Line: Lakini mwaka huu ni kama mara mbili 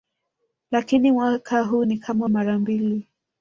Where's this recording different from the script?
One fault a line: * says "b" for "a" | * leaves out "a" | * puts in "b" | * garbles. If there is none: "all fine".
all fine